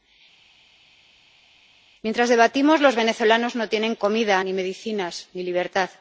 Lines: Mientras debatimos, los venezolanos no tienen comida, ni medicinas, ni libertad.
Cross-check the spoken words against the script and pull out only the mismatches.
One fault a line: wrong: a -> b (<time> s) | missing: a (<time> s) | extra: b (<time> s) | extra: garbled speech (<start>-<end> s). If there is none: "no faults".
no faults